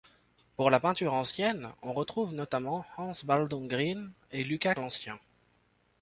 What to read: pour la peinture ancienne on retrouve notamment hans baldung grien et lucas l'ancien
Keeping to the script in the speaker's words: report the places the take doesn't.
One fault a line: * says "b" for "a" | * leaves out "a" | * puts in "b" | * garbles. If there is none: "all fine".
all fine